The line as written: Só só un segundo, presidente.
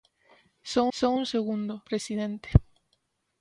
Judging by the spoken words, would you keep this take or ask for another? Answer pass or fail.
pass